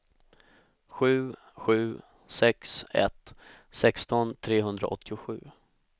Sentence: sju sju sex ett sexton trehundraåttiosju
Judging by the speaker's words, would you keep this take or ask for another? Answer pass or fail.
pass